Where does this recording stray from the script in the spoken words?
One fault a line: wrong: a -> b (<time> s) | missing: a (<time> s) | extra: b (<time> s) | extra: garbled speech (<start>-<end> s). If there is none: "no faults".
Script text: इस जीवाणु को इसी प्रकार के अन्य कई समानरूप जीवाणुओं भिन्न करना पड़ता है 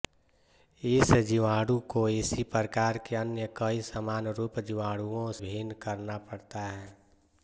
no faults